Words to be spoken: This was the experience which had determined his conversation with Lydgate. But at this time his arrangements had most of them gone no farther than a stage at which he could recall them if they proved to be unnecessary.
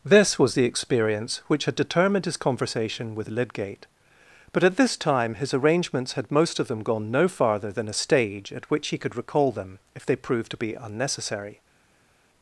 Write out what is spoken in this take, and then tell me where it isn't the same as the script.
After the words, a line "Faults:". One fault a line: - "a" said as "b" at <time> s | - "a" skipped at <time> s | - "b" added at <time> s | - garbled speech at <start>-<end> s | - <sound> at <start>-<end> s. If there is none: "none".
This was the experience which had determined his conversation with Lydgate. But at this time his arrangements had most of them gone no farther than a stage at which he could recall them if they proved to be unnecessary.
Faults:
none